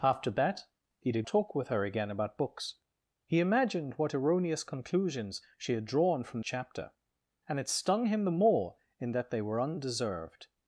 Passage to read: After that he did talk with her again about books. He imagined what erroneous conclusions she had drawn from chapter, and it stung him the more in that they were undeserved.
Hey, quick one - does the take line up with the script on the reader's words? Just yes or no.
yes